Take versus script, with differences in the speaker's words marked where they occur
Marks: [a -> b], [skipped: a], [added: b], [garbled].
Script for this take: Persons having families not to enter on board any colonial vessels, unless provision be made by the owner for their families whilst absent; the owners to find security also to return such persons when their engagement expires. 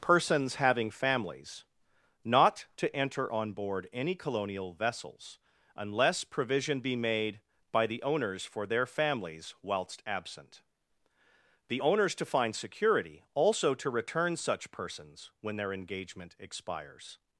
Persons having families not to enter on board any colonial vessels, unless provision be made by the [owner -> owners] for their families whilst absent; the owners to find security also to return such persons when their engagement expires.